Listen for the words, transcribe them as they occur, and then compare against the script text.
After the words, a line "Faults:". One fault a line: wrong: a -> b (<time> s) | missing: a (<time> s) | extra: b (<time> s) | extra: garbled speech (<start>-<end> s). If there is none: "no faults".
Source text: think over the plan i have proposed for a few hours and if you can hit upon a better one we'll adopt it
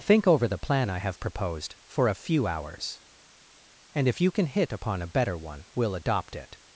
think over the plan i have proposed for a few hours and if you can hit upon a better one we'll adopt it
Faults:
no faults